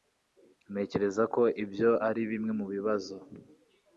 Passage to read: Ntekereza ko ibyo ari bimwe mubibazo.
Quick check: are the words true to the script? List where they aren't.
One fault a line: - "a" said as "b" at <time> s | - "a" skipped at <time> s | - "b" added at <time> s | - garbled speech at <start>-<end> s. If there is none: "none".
none